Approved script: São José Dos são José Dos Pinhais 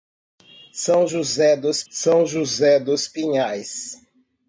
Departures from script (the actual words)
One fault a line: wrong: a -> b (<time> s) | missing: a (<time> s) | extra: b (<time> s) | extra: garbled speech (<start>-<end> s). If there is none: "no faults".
no faults